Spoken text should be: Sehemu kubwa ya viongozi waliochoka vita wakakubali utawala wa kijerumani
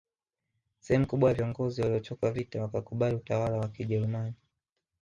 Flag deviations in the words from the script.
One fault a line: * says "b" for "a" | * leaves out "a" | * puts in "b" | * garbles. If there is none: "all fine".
all fine